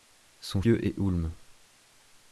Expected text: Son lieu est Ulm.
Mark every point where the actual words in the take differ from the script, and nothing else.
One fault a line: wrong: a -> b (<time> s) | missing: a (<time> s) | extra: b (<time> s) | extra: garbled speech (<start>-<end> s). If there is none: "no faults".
no faults